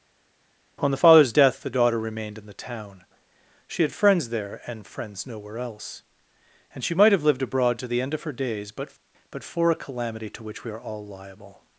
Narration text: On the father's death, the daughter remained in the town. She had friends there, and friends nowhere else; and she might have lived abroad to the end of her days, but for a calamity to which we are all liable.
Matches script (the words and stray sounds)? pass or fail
fail